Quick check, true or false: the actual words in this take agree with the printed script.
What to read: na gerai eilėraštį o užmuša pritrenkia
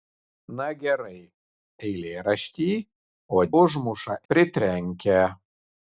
true